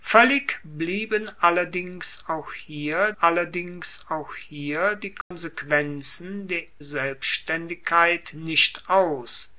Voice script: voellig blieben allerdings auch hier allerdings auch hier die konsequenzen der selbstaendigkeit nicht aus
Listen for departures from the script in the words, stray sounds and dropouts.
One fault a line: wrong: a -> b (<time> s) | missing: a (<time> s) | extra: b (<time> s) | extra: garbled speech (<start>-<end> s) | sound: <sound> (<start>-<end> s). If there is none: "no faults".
sound: dropout (5.2-5.3 s)